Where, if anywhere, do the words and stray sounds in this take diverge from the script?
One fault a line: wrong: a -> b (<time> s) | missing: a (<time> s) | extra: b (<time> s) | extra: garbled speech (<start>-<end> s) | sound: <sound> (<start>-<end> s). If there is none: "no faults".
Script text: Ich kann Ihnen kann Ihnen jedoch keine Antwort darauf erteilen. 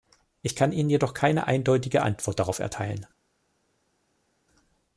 missing: kann Ihnen (0.9 s)
extra: eindeutige (1.4 s)